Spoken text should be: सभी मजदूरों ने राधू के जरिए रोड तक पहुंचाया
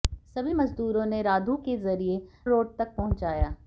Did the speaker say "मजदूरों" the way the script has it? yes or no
yes